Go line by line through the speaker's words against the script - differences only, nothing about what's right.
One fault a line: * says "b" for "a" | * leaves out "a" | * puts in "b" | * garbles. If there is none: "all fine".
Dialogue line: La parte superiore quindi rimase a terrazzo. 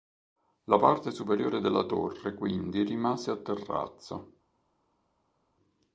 * puts in "della torre"